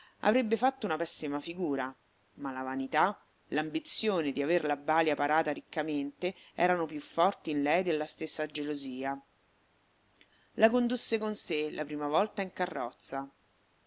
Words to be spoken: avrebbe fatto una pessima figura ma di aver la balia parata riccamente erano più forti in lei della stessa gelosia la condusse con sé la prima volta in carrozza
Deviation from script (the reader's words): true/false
true